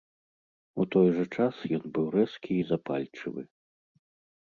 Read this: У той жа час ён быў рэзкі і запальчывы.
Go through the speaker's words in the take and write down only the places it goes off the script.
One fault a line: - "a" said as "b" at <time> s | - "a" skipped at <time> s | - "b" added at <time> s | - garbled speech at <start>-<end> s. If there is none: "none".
none